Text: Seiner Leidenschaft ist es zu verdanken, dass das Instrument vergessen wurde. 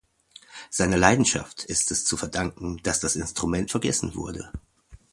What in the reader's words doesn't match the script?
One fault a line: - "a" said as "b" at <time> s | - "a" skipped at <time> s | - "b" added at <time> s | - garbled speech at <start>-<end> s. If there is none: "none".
none